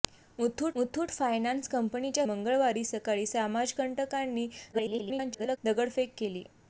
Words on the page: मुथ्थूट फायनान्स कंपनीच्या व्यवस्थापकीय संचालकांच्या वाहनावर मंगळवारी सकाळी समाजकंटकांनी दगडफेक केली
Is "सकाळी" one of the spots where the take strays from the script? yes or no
no